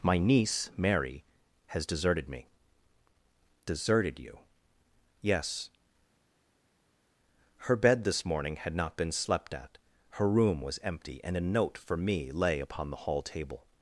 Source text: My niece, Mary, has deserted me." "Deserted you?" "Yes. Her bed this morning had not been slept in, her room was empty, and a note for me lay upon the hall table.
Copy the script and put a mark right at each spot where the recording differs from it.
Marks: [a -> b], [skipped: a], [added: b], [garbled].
My niece, Mary, has deserted me." "Deserted you?" "Yes. Her bed this morning had not been slept [in, -> at] her room was empty, and a note for me lay upon the hall table.